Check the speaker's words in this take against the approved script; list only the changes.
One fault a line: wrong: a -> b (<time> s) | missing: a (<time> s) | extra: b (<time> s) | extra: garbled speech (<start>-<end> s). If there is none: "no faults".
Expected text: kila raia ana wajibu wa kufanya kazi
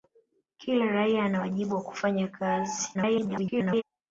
extra: garbled speech (2.9-3.8 s)